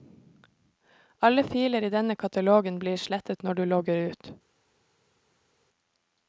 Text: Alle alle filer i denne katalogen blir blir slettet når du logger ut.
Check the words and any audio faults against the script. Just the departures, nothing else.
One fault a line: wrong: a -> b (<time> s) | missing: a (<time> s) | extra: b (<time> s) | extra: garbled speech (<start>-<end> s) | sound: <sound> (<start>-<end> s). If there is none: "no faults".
missing: alle (1.4 s)
missing: blir (3.0 s)